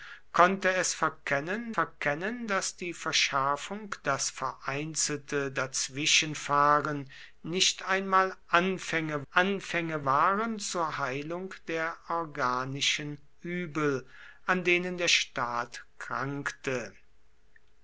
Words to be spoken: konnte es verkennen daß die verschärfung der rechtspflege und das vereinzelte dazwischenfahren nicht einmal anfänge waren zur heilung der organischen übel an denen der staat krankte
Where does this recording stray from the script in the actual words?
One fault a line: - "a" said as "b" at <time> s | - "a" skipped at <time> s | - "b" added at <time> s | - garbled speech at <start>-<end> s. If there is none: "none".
- "verkennen" added at 1.7 s
- "der rechtspflege und" skipped at 3.9 s
- "anfänge" added at 9.3 s